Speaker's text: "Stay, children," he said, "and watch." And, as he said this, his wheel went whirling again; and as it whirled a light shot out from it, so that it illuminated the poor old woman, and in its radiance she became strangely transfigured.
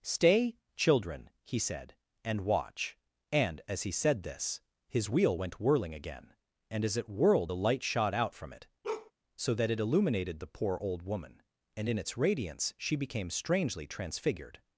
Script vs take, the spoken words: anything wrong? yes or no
no